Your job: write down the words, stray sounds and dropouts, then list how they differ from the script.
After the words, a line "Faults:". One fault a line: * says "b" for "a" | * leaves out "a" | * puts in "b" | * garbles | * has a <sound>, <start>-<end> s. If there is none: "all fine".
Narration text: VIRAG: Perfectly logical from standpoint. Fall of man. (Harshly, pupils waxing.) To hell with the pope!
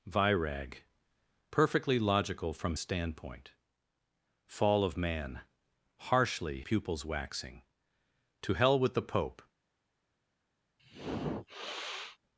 VIRAG: Perfectly logical from standpoint. Fall of man. (Harshly, pupils waxing.) To hell with the pope!
Faults:
* has a sniff, 10.8-12.2 s